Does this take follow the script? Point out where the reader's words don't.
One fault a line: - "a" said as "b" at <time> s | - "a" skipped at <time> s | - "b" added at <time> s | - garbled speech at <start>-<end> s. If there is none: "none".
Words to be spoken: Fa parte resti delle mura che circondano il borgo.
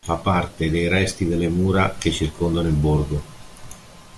- "dei" added at 0.7 s